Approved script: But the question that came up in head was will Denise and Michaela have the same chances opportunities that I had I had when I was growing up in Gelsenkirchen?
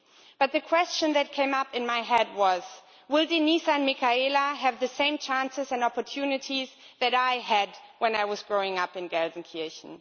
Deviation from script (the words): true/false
true